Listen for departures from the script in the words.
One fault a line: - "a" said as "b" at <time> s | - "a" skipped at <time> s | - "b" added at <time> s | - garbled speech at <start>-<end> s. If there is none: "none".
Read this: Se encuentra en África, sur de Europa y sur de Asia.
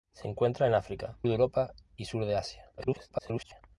- "sur" skipped at 1.2 s
- garbled speech at 2.8-3.6 s